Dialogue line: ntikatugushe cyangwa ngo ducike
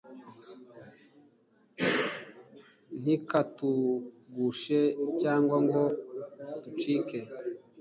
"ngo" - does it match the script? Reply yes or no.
yes